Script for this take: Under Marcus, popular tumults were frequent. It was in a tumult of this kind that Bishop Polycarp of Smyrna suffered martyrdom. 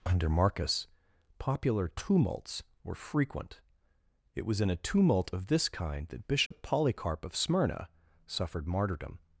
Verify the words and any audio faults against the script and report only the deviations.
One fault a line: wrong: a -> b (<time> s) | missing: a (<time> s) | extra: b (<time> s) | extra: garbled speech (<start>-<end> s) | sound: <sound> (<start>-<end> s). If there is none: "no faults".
sound: dropout (6.5-6.5 s)